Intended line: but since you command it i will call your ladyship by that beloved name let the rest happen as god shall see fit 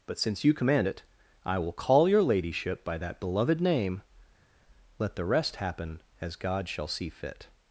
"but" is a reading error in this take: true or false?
false